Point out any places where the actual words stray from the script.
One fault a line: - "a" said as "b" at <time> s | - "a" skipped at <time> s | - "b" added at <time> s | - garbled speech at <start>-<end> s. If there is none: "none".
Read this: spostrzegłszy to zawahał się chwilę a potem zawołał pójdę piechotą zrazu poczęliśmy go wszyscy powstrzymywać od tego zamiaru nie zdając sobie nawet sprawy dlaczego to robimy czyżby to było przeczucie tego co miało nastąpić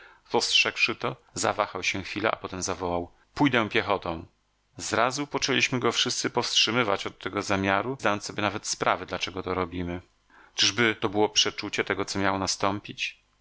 - "nie" skipped at 8.0 s